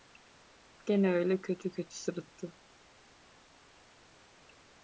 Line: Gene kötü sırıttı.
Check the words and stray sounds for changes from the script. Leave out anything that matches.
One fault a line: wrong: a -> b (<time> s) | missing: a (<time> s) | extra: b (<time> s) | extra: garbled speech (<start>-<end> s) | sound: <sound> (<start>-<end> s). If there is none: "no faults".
extra: öyle kötü (1.1 s)